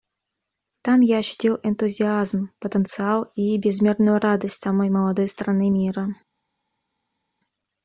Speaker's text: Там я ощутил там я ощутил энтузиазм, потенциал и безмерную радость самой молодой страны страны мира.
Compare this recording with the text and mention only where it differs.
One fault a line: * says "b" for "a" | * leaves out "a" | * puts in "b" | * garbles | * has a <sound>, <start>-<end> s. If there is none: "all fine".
* leaves out "там я ощутил"
* leaves out "страны"